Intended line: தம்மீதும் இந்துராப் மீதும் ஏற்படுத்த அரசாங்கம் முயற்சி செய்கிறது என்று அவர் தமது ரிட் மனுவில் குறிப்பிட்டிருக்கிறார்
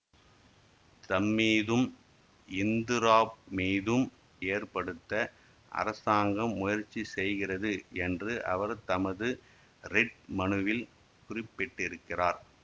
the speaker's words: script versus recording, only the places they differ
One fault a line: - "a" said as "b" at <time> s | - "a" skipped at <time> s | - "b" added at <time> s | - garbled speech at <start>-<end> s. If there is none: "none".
none